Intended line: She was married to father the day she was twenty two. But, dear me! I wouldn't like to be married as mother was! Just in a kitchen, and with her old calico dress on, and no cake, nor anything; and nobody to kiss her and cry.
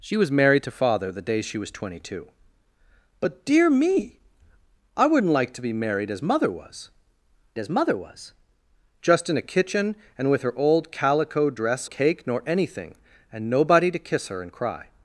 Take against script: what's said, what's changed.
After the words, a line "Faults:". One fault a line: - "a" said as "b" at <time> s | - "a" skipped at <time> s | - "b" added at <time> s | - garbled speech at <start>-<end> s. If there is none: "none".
She was married to father the day she was twenty two. But, dear me! I wouldn't like to be married as mother was as mother was! Just in a kitchen, and with her old calico dress cake, nor anything; and nobody to kiss her and cry.
Faults:
- "as mother was" added at 7.6 s
- "on and no" skipped at 11.9 s